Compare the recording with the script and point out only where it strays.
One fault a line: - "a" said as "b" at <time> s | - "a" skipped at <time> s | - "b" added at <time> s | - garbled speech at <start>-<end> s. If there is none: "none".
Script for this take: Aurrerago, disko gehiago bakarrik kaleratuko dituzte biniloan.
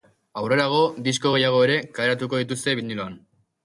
- "bakarrik" said as "ere" at 1.7 s